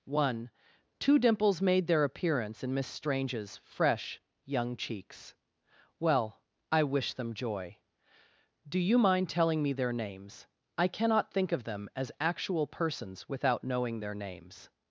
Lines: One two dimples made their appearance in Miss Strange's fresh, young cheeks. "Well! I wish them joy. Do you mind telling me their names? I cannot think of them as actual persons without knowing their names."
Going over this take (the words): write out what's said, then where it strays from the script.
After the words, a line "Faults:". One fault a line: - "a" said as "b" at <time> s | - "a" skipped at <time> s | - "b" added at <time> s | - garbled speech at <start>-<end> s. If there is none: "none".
One two dimples made their appearance in Miss Strange's fresh, young cheeks. "Well! I wish them joy. Do you mind telling me their names? I cannot think of them as actual persons without knowing their names."
Faults:
none